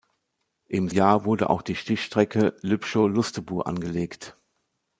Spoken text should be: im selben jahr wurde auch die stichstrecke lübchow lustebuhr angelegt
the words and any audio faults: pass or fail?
fail